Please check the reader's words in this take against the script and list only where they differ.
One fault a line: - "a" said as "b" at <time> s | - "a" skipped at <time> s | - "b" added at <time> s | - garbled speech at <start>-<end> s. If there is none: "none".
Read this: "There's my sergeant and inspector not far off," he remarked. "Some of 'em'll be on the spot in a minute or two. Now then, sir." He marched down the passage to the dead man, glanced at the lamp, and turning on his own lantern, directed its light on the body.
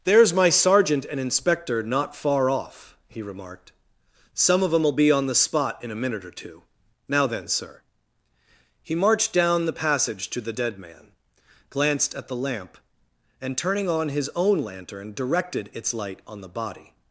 none